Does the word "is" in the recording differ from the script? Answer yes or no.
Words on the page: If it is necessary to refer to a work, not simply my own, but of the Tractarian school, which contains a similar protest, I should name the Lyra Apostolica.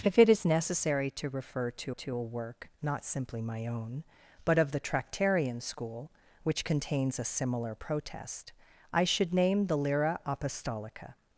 no